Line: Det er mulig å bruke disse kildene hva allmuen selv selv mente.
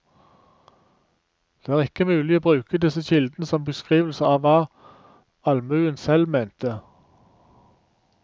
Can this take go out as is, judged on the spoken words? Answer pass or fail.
fail